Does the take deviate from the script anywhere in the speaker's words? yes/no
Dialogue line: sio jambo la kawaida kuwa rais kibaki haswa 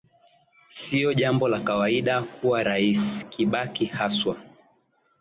no